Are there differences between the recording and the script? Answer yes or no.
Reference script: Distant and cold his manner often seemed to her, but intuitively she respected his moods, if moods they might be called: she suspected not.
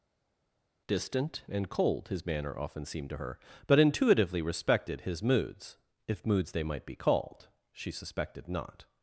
yes